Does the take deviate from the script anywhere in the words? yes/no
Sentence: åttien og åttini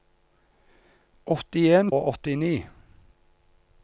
no